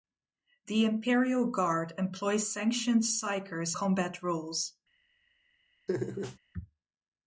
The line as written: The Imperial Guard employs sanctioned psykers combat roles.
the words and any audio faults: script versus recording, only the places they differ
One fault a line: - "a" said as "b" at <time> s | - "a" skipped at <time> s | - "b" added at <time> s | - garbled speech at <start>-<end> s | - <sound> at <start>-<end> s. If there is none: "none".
- laugh at 5.9-6.4 s